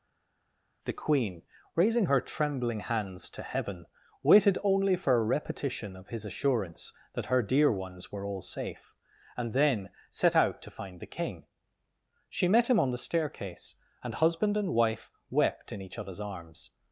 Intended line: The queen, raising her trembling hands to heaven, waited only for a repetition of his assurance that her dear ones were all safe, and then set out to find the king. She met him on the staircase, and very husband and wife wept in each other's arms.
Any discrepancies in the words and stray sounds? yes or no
yes